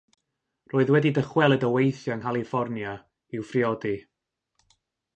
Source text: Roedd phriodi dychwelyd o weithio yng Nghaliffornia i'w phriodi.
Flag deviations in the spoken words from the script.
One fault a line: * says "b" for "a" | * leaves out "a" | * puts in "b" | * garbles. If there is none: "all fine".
* says "wedi" for "phriodi"